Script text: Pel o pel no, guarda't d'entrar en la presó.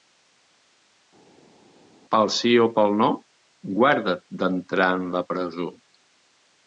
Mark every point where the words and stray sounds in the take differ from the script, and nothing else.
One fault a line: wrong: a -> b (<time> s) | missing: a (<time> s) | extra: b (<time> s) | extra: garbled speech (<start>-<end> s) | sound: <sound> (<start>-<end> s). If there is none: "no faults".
extra: sí (2.3 s)